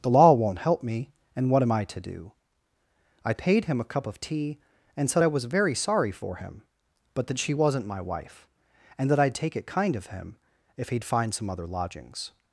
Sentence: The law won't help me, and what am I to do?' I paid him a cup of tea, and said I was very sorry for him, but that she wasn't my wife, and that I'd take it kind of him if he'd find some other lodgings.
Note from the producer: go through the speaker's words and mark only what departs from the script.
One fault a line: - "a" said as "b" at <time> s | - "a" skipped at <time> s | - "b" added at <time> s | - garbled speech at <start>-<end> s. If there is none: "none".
none